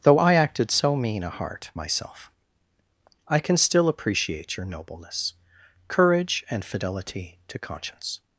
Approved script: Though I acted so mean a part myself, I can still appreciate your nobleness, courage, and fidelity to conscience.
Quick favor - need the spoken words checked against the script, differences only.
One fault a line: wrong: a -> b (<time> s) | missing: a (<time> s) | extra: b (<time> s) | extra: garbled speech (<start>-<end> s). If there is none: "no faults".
wrong: part -> heart (1.3 s)